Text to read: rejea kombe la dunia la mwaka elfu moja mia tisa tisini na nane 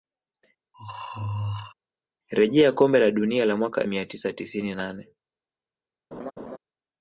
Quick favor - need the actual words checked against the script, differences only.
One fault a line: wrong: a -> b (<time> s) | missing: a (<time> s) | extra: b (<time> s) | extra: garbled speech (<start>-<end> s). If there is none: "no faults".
missing: elfu moja (3.8 s)
missing: na (4.7 s)